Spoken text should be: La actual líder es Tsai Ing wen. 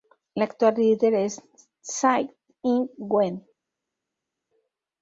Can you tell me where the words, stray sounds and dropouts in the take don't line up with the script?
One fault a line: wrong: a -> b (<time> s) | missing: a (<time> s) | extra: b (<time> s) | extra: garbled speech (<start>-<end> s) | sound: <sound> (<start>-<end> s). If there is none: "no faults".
no faults